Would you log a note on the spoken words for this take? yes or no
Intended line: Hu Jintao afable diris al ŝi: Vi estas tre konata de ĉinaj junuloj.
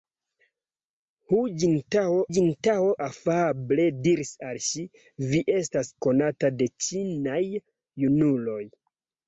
yes